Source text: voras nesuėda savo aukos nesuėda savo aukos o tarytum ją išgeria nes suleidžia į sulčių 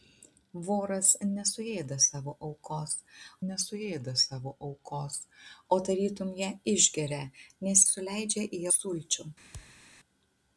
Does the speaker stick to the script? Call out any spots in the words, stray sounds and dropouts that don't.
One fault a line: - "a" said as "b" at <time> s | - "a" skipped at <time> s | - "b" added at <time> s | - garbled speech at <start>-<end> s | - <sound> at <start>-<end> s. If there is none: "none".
- thud at 9.5-9.8 s